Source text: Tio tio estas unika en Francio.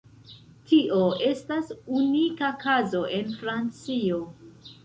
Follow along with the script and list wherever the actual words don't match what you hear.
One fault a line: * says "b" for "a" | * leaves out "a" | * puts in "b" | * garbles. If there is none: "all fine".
* leaves out "tio"
* puts in "kazo"